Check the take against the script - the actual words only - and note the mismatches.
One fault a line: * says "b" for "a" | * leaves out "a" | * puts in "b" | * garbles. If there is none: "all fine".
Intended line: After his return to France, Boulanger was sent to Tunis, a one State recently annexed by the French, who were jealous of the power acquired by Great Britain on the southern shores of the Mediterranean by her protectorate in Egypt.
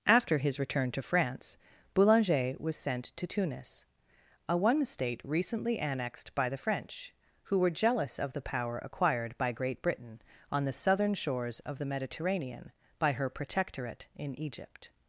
all fine